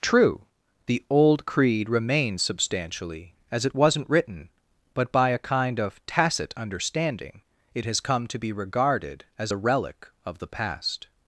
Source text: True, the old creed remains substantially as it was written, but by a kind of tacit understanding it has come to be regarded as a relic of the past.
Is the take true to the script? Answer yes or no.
no